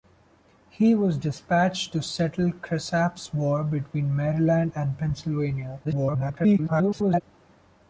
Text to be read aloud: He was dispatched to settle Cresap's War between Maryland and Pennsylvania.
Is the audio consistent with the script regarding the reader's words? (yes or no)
no